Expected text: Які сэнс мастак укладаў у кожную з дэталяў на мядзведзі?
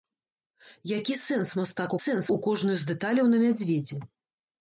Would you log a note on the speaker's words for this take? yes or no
yes